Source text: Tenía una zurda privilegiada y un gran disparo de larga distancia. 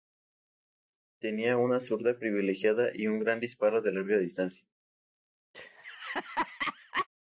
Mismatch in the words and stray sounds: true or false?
true